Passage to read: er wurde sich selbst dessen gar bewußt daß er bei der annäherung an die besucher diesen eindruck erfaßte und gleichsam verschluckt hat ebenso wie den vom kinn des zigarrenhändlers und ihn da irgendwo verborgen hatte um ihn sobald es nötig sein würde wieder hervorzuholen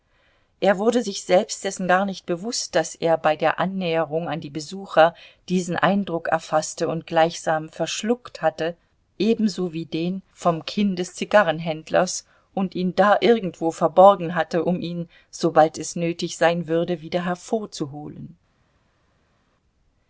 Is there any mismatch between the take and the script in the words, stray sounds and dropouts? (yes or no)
yes